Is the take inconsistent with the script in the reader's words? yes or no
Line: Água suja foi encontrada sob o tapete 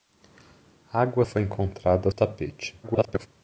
yes